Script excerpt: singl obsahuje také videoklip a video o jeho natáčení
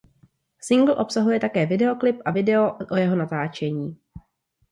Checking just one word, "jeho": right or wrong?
right